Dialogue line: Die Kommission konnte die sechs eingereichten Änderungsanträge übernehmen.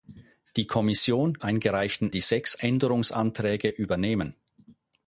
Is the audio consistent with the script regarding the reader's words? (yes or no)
no